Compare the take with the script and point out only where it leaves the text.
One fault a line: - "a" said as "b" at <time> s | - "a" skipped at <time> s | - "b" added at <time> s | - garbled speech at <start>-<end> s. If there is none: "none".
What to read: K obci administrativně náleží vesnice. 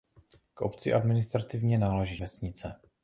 none